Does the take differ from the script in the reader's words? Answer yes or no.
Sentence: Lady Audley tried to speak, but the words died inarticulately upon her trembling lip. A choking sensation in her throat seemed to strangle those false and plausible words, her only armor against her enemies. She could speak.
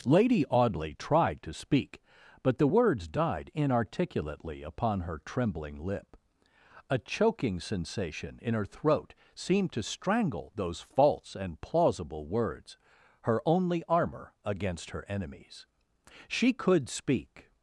no